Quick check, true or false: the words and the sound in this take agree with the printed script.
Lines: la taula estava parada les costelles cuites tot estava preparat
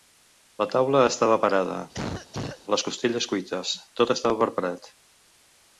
false